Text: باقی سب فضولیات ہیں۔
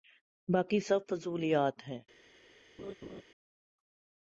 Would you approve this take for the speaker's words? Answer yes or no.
yes